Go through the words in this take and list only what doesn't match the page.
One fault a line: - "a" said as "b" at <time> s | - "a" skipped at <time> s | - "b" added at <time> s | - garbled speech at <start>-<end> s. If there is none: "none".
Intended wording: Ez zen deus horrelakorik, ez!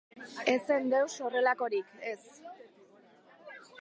none